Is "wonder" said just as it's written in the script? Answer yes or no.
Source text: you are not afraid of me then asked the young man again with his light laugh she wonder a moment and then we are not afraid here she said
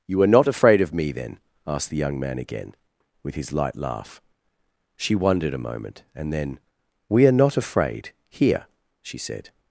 no